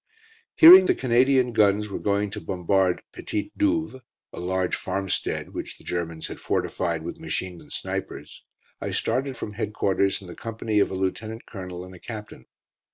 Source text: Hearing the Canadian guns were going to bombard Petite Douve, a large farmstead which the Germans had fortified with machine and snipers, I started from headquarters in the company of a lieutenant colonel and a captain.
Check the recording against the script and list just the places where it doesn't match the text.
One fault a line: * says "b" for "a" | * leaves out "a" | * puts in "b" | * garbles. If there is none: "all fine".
all fine